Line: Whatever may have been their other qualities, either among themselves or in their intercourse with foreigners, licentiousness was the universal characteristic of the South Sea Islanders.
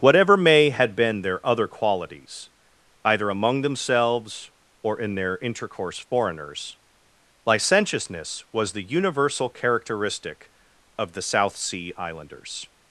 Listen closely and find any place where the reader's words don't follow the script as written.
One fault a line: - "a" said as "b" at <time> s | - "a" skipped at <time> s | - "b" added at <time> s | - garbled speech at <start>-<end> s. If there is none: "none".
- "have" said as "had" at 0.7 s
- "with" skipped at 6.0 s